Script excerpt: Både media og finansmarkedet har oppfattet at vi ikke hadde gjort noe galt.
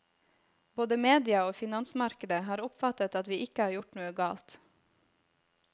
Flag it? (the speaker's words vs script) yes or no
yes